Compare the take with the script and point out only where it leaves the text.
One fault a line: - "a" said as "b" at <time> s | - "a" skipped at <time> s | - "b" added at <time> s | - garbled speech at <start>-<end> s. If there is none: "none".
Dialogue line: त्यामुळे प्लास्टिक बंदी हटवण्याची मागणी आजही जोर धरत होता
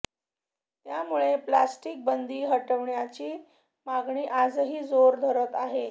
- "होता" said as "आहे" at 5.5 s